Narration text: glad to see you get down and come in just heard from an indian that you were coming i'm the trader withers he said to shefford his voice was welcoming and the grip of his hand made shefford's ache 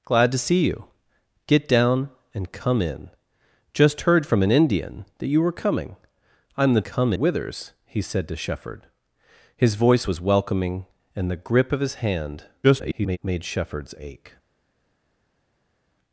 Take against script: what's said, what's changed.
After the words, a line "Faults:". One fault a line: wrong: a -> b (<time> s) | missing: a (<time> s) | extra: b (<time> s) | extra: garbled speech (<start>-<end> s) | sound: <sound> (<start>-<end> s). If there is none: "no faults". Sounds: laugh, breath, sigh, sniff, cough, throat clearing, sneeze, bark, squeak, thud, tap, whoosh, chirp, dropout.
glad to see you get down and come in just heard from an indian that you were coming i'm the come withers he said to shefford his voice was welcoming and the grip of his hand [garbled] made shefford's ache
Faults:
wrong: trader -> come (6.8 s)
extra: garbled speech (12.6-13.2 s)